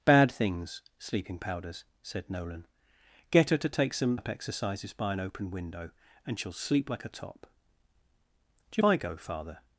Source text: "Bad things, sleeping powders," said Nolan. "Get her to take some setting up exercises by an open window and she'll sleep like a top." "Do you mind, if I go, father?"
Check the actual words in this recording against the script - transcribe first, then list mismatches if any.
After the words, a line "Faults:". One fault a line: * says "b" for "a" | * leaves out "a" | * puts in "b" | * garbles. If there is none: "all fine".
"Bad things, sleeping powders," said Nolan. "Get her to take some up exercises by an open window and she'll sleep like a top." "Do you I go, father?"
Faults:
* leaves out "setting"
* leaves out "mind if"